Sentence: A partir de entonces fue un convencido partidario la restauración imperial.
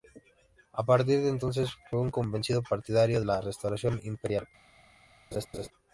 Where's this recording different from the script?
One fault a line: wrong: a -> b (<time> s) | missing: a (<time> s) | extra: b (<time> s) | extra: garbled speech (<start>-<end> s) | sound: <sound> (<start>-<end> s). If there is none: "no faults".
sound: laugh (5.3-5.7 s)